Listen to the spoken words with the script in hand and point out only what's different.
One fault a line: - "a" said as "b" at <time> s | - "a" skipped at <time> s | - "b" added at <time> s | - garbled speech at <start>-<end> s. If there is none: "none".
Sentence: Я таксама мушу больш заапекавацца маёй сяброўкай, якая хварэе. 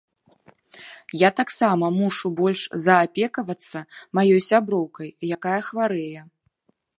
none